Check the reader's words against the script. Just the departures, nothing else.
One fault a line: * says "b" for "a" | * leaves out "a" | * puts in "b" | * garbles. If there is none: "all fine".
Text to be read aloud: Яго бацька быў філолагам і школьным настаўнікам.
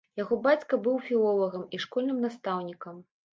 all fine